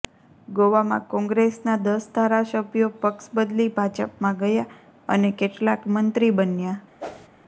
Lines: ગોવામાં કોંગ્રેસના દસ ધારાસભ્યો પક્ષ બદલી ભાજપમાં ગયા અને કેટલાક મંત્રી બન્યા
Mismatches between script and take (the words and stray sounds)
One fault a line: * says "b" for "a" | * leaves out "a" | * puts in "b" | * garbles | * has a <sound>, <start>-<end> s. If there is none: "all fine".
* has a whoosh, 7.0-7.3 s